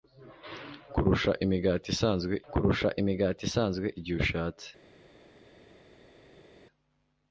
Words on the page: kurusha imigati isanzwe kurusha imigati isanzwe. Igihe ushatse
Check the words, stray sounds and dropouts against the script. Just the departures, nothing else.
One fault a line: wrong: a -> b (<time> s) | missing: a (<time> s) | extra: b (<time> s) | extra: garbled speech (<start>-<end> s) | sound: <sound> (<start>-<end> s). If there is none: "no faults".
no faults